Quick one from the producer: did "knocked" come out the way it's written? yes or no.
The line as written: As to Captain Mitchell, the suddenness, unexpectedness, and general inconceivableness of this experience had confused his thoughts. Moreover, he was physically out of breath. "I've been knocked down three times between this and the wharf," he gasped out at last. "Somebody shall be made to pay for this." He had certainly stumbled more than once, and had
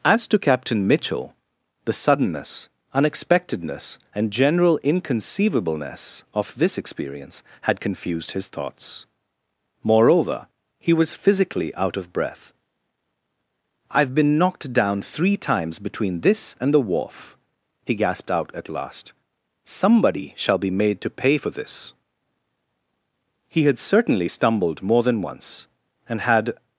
yes